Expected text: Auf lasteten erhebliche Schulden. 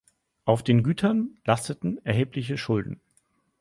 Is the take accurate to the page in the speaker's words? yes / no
no